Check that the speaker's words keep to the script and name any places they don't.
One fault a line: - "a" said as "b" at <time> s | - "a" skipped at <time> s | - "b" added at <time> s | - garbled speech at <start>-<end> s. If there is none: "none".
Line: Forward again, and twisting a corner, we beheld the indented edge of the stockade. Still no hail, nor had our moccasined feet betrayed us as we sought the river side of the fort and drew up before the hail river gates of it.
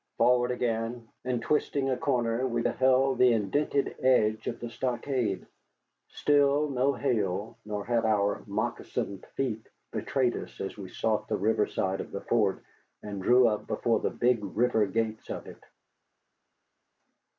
- "hail" said as "big" at 14.1 s